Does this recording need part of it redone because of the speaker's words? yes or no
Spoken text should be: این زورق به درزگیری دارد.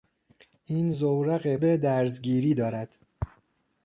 no